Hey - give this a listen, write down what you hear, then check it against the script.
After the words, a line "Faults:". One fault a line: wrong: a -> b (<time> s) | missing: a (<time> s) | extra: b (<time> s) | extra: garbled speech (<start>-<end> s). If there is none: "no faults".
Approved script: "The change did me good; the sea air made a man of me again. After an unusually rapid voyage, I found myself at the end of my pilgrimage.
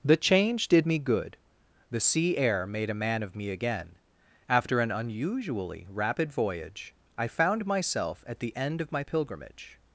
"The change did me good; the sea air made a man of me again. After an unusually rapid voyage, I found myself at the end of my pilgrimage.
Faults:
no faults